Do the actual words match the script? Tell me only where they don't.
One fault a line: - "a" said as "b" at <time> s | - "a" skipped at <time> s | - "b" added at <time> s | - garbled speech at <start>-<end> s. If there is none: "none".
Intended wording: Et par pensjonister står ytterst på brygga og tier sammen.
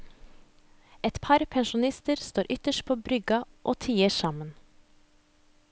none